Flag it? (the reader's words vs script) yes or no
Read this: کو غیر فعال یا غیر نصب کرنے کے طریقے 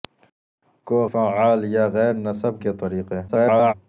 yes